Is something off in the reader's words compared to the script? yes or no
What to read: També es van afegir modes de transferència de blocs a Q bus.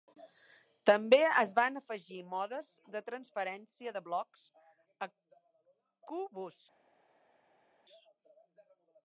no